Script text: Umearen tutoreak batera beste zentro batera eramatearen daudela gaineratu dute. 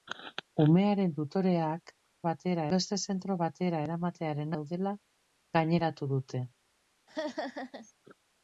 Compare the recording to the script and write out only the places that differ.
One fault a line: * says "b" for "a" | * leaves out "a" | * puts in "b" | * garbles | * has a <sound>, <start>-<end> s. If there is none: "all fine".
* has a laugh, 7.1-7.9 s